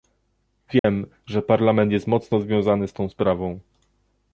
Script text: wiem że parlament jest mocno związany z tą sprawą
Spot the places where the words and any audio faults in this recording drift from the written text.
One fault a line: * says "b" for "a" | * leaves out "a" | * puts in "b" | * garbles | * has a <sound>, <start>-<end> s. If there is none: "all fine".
* has a dropout, 0.8-0.8 s